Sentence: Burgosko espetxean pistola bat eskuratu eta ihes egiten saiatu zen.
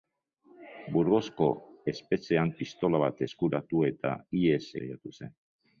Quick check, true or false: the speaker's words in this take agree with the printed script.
false